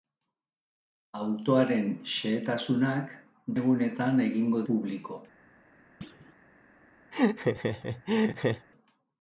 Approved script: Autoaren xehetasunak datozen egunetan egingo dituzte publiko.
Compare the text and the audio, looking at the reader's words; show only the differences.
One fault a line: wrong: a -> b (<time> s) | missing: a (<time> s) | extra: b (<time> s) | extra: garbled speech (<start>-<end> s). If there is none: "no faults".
missing: datozen (3.1 s)
missing: dituzte (4.6 s)